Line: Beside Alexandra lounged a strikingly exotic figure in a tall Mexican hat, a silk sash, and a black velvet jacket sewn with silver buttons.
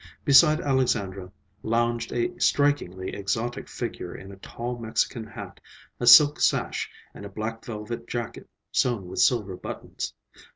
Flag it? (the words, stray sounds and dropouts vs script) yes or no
no